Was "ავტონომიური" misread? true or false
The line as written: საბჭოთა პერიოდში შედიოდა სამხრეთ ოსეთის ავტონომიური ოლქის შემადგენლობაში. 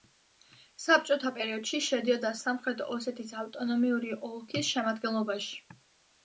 false